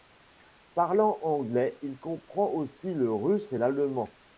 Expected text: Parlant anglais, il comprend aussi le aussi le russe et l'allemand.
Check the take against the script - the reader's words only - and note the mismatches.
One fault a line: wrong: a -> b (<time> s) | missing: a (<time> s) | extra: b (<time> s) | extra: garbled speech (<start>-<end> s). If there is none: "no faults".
missing: aussi le (3.1 s)